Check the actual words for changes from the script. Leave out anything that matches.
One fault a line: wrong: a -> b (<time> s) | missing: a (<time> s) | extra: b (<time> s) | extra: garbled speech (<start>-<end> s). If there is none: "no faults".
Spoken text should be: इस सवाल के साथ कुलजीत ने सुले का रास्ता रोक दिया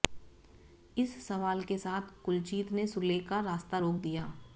no faults